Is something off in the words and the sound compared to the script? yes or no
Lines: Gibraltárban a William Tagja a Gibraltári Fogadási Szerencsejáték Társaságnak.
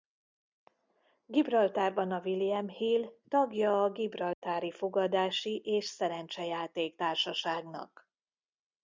yes